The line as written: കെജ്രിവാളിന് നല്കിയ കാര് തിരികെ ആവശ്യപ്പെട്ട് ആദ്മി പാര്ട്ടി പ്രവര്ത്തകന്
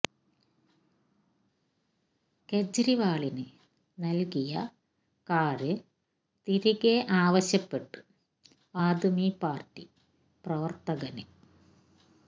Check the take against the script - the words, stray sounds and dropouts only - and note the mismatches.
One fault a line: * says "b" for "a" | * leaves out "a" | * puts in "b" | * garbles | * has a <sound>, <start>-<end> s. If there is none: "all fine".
all fine